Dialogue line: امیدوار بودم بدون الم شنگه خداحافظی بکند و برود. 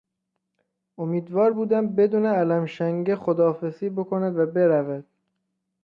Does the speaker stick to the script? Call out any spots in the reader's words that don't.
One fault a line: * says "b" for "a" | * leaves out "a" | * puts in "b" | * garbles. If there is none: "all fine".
all fine